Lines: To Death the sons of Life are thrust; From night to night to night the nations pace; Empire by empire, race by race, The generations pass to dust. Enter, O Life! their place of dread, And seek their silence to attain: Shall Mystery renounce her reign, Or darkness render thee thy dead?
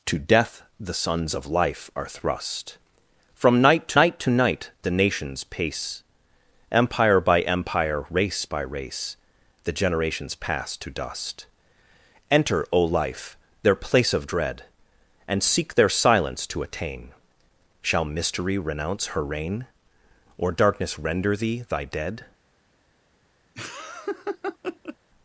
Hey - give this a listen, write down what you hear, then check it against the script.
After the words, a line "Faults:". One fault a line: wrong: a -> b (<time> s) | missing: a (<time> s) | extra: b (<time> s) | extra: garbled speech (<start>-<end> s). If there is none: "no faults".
To Death the sons of Life are thrust; From night to night to night the nations pace; Empire by empire, race by race, The generations pass to dust. Enter, O Life! their place of dread, And seek their silence to attain: Shall Mystery renounce her reign, Or darkness render thee thy dead?
Faults:
no faults